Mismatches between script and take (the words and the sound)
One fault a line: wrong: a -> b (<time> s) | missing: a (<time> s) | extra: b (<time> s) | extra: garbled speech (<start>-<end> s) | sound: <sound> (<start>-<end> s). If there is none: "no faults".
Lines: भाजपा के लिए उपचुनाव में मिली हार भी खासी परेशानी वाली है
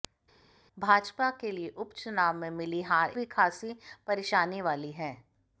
no faults